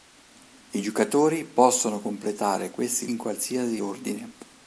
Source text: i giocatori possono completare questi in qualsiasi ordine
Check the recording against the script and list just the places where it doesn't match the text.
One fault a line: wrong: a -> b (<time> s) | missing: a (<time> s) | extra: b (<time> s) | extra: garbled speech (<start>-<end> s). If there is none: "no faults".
no faults